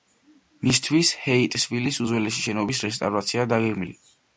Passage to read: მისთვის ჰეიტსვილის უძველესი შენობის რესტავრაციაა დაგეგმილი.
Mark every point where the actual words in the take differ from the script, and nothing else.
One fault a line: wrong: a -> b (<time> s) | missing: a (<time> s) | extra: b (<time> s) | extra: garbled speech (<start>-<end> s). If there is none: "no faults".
no faults